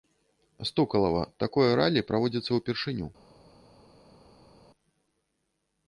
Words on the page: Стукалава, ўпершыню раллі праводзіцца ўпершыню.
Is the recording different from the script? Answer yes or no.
yes